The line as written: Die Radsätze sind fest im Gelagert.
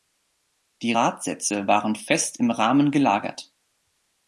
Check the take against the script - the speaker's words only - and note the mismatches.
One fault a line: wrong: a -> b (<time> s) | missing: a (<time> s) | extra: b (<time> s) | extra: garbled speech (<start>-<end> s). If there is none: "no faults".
wrong: sind -> waren (1.7 s)
extra: Rahmen (2.5 s)